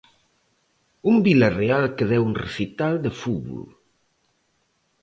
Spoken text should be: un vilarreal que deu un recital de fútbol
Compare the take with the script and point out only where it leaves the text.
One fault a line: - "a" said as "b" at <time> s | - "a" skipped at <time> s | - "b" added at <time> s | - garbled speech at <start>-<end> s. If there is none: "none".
none